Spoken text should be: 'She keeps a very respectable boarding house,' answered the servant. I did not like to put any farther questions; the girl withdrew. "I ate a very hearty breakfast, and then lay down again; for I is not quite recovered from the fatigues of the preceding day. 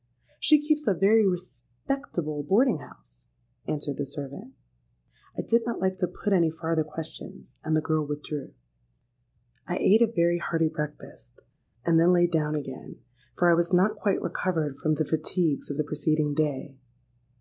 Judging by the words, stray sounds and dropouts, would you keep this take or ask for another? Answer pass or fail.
fail